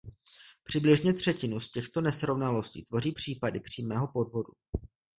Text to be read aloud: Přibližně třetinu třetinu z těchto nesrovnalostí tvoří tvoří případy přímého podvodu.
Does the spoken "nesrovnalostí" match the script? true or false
true